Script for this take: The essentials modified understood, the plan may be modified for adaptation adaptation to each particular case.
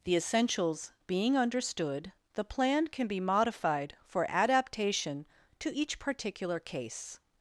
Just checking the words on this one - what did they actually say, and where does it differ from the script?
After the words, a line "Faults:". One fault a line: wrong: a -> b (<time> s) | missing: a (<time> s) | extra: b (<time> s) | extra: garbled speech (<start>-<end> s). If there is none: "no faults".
The essentials being understood, the plan can be modified for adaptation to each particular case.
Faults:
wrong: modified -> being (1.1 s)
wrong: may -> can (2.9 s)
missing: adaptation (5.3 s)